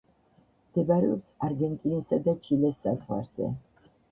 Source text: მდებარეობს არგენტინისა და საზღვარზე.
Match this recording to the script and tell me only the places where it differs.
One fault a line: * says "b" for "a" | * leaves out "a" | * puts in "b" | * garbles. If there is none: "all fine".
* puts in "ჩილეს"